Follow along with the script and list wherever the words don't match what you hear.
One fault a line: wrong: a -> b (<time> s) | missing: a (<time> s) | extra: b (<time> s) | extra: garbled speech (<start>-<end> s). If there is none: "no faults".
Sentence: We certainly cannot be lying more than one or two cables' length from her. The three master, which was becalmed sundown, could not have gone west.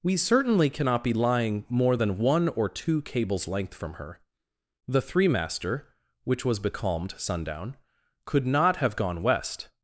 no faults